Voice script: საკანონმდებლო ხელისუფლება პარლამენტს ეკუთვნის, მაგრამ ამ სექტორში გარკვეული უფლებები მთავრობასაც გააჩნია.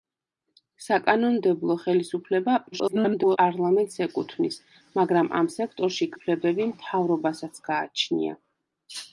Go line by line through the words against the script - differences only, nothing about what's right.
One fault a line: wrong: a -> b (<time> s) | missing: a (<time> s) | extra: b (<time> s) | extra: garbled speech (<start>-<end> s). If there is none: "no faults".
extra: garbled speech (2.7-3.4 s)
missing: გარკვეული (6.1 s)